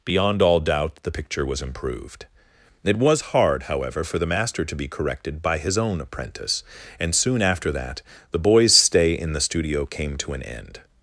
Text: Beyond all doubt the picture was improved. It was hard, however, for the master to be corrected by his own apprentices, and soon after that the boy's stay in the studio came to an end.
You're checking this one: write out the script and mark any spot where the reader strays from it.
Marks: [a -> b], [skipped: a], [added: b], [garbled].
Beyond all doubt the picture was improved. It was hard, however, for the master to be corrected by his own [apprentices, -> apprentice] and soon after that the boy's stay in the studio came to an end.